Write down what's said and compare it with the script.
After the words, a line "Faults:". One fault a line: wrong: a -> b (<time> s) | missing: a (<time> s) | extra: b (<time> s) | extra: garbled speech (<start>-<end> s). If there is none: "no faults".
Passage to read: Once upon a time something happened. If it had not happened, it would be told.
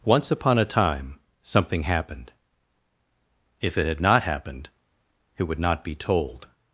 Once upon a time something happened. If it had not happened, it would not be told.
Faults:
extra: not (5.6 s)